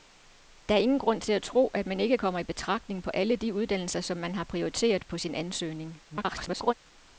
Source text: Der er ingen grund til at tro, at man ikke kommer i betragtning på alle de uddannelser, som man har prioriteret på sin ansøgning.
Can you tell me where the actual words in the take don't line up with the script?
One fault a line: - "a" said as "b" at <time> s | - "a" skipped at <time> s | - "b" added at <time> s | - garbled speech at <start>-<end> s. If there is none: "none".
- garbled speech at 6.1-6.7 s